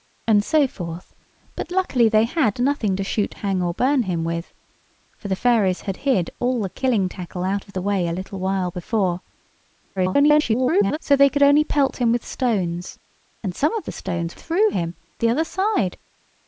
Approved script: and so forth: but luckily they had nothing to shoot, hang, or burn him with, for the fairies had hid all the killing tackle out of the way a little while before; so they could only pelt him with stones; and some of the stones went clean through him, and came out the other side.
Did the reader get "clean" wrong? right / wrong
wrong